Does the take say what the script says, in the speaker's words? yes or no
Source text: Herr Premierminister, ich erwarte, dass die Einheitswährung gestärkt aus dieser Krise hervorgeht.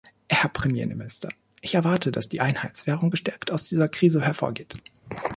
yes